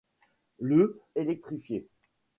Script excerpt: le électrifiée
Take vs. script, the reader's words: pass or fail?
pass